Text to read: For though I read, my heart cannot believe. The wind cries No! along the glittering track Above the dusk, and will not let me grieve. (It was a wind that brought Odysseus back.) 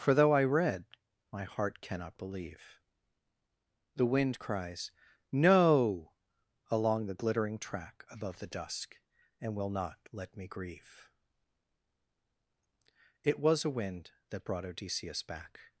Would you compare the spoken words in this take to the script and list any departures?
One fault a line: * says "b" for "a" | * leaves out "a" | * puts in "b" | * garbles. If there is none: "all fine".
all fine